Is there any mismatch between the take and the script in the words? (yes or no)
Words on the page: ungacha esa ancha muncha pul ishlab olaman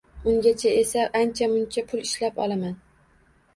no